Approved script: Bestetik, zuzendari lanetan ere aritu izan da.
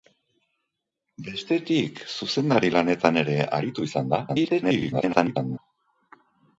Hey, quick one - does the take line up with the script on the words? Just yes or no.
no